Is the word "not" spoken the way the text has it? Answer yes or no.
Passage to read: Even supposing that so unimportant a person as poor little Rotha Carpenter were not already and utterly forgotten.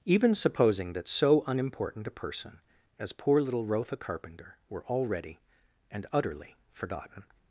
no